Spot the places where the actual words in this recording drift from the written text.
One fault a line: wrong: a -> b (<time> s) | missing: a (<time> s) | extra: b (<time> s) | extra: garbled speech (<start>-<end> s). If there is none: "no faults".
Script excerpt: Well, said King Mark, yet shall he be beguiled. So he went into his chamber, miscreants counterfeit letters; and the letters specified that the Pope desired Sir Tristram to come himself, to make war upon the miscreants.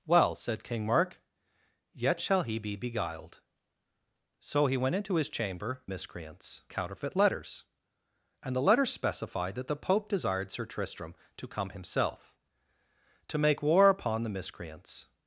no faults